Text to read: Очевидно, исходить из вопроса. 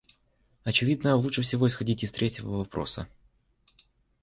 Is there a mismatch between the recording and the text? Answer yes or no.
yes